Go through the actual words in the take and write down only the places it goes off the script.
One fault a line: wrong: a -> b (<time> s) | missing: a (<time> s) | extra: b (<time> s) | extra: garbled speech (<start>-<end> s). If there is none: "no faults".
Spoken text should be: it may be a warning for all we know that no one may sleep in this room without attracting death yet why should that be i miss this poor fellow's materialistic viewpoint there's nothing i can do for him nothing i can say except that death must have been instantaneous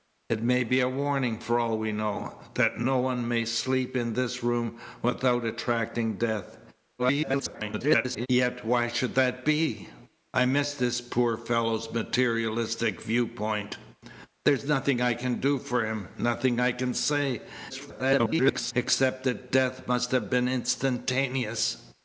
extra: garbled speech (7.0-8.3 s)
extra: garbled speech (17.7-18.7 s)